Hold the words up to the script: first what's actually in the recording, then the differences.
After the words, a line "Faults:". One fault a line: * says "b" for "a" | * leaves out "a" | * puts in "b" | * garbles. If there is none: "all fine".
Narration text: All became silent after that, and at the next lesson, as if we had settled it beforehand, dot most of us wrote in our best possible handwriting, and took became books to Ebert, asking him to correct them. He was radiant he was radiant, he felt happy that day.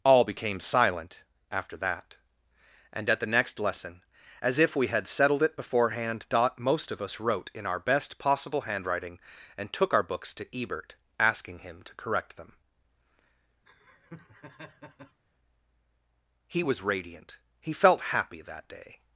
All became silent after that, and at the next lesson, as if we had settled it beforehand, dot most of us wrote in our best possible handwriting, and took our books to Ebert, asking him to correct them. He was radiant, he felt happy that day.
Faults:
* says "our" for "became"
* leaves out "was radiant he"